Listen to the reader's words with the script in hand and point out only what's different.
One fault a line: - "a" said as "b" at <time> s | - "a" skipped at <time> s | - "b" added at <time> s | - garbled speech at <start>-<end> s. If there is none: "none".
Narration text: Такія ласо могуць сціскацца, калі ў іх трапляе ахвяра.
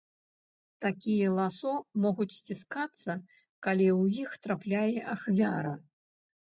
none